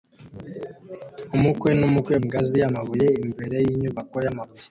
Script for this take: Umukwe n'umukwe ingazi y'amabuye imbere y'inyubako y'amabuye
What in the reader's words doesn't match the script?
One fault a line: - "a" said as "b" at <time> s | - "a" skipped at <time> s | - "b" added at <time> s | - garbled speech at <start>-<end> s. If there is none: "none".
none